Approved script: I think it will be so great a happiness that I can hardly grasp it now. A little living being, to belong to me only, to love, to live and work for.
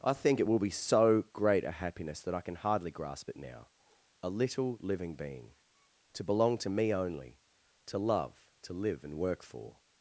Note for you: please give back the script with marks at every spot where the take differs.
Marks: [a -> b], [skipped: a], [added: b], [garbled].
I think it will be so great a happiness that I can hardly grasp it now. A little living being, to belong to me only, to love, to live and work for.